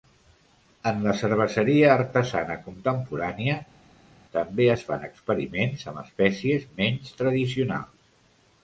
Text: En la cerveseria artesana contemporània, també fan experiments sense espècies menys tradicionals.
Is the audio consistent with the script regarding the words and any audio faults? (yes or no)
no